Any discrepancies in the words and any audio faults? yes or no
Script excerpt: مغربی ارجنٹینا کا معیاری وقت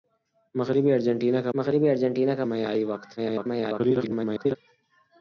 yes